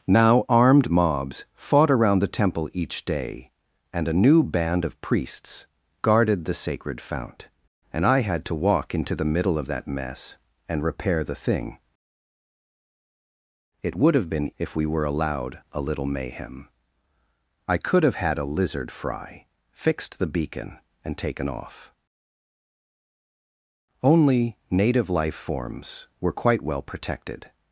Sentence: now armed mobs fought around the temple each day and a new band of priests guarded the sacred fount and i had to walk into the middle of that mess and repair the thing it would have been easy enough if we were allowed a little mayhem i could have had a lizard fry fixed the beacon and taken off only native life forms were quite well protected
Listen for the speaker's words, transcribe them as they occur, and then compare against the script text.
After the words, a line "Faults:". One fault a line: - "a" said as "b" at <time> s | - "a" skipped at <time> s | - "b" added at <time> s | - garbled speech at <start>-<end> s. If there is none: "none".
now armed mobs fought around the temple each day and a new band of priests guarded the sacred fount and i had to walk into the middle of that mess and repair the thing it would have been if we were allowed a little mayhem i could have had a lizard fry fixed the beacon and taken off only native life forms were quite well protected
Faults:
- "easy enough" skipped at 14.5 s